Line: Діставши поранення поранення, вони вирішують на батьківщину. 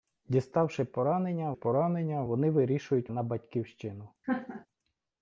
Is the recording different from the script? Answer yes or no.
no